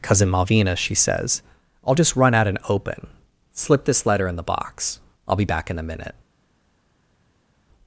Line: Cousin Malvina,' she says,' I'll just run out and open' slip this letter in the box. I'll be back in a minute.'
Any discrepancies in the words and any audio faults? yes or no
no